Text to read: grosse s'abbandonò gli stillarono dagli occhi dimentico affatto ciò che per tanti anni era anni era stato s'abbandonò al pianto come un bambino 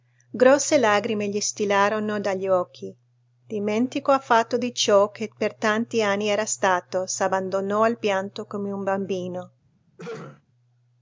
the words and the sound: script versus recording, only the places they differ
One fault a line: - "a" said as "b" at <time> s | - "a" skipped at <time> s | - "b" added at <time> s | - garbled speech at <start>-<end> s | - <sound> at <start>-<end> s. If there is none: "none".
- "s'abbandonò" said as "lagrime" at 0.8 s
- "di" added at 4.6 s
- "anni era" skipped at 6.5 s
- throat clearing at 10.0-10.4 s